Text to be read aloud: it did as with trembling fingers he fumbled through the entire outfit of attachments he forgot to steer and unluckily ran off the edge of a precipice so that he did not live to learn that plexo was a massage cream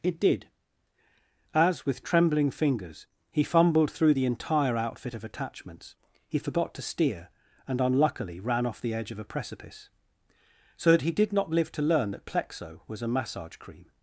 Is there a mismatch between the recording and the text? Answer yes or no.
no